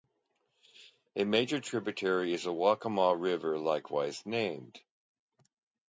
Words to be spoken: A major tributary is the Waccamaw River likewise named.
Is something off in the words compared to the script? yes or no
no